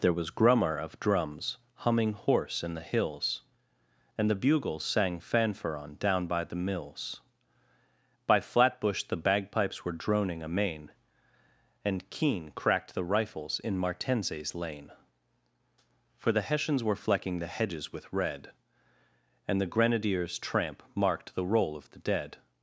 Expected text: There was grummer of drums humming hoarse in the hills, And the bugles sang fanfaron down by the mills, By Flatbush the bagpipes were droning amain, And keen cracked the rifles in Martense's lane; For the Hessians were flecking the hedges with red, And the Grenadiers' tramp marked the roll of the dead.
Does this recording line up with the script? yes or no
yes